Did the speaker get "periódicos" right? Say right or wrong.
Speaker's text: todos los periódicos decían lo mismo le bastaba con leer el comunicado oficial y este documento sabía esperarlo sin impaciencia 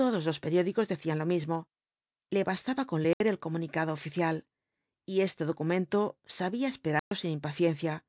right